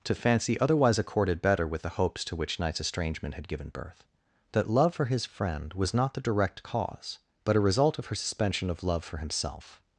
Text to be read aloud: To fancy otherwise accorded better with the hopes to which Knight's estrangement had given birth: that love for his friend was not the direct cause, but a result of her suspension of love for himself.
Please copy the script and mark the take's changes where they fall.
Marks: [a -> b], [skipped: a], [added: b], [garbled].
To fancy otherwise accorded better with the hopes to which Knight's estrangement had given birth: that love for his friend was not the direct cause, but a result of her suspension of love for himself.